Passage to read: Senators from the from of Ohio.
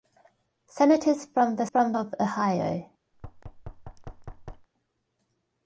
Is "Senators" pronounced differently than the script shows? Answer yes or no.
no